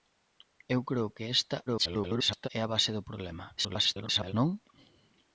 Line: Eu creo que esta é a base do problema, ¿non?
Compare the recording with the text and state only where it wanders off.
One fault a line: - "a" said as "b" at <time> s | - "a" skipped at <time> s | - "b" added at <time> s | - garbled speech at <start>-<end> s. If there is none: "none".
- garbled speech at 1.7-2.5 s
- garbled speech at 3.6-4.3 s